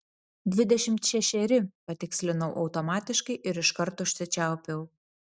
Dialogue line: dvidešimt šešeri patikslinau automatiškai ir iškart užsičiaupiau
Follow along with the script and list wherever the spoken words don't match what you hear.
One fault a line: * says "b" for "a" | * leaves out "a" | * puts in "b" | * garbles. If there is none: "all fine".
all fine